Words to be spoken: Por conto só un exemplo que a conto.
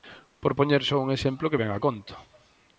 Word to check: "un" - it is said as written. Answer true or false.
true